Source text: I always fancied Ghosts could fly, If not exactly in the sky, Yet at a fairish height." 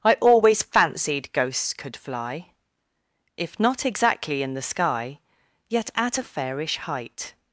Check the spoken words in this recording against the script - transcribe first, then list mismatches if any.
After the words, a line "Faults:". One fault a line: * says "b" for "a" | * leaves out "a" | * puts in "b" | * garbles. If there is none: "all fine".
I always fancied Ghosts could fly, If not exactly in the sky, Yet at a fairish height."
Faults:
all fine